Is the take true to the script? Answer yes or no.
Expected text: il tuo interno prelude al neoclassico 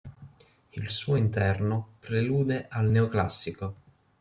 no